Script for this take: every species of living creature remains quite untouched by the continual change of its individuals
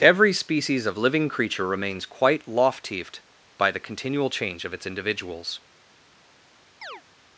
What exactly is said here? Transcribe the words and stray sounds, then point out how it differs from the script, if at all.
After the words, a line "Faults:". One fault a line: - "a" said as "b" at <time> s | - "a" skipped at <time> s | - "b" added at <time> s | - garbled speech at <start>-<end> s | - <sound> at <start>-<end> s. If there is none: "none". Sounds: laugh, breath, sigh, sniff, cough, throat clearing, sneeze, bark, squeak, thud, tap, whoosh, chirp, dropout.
every species of living creature remains quite loftieft by the continual change of its individuals
Faults:
- "untouched" said as "loftieft" at 2.5 s
- chirp at 6.8-7.0 s